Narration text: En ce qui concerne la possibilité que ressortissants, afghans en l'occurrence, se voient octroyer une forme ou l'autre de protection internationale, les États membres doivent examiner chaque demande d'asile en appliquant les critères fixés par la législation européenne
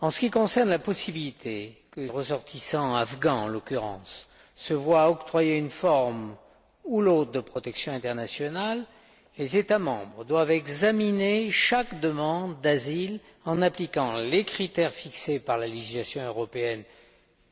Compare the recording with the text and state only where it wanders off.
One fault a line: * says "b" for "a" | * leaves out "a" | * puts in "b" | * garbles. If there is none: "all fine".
all fine